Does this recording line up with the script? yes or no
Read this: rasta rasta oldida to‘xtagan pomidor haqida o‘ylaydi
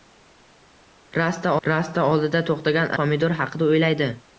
yes